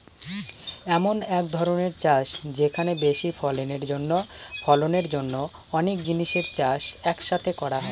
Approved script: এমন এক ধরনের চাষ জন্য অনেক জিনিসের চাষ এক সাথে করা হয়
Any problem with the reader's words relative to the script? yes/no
yes